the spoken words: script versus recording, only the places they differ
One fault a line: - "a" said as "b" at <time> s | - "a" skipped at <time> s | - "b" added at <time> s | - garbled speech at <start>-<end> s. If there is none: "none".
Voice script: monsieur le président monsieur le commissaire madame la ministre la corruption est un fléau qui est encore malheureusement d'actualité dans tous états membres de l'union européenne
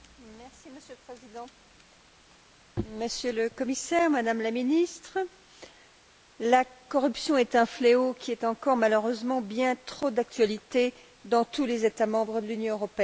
- "bien trop" added at 9.4 s
- "les" added at 11.7 s